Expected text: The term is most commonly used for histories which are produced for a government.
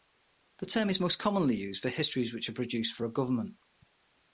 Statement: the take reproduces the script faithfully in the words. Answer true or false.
true